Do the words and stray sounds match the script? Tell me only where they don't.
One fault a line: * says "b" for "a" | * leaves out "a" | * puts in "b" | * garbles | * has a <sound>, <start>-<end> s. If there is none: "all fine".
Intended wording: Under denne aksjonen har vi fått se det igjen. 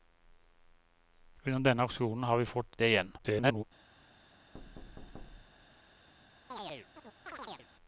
* leaves out "se"
* garbles
* has a thud, 4.5-5.8 s
* has a chirp, 6.5-7.7 s